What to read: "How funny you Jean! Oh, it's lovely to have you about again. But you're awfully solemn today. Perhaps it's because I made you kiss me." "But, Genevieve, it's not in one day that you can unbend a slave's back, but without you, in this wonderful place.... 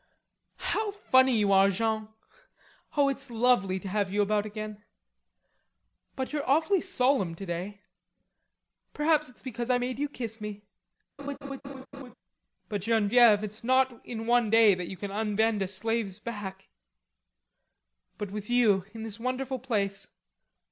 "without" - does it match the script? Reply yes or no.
no